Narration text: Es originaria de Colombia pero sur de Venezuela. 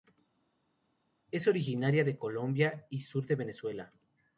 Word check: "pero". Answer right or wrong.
wrong